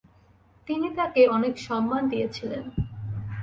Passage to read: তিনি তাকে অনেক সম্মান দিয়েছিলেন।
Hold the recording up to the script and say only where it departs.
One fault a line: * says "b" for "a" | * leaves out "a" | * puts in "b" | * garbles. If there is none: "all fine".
all fine